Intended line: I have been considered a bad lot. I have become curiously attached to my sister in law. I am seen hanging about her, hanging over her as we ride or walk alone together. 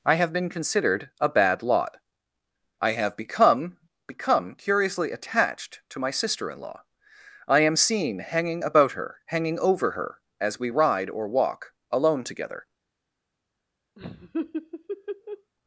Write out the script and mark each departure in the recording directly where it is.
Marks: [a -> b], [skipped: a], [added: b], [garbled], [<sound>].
I have been considered a bad lot. I have become [added: become] curiously attached to my sister in law. I am seen hanging about her, hanging over her as we ride or walk alone together. [laugh]